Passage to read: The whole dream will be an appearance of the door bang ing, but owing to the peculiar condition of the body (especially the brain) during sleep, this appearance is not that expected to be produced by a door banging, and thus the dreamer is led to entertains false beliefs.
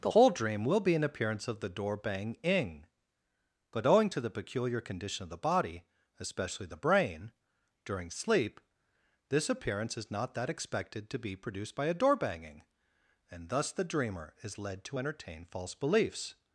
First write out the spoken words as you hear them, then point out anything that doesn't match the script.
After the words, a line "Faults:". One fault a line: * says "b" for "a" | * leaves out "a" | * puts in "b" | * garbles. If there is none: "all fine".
The whole dream will be an appearance of the door bang ing, but owing to the peculiar condition of the body (especially the brain) during sleep, this appearance is not that expected to be produced by a door banging, and thus the dreamer is led to entertain false beliefs.
Faults:
* says "entertain" for "entertains"